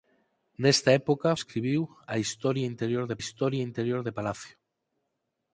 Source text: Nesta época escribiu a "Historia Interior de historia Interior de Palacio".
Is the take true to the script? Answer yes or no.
yes